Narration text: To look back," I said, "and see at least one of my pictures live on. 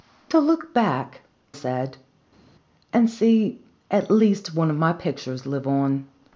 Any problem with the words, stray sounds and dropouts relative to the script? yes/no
yes